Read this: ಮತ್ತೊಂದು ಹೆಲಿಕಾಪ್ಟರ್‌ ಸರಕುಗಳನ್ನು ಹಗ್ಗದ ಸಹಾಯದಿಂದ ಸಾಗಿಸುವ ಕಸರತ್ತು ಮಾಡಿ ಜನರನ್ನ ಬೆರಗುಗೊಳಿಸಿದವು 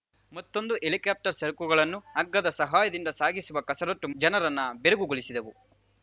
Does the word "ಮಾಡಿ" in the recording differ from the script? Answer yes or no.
yes